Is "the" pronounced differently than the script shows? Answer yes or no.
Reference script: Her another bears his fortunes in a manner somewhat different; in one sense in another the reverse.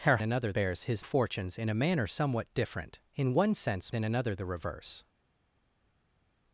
no